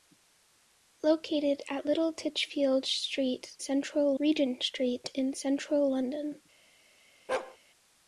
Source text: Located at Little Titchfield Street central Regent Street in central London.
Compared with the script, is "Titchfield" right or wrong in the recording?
right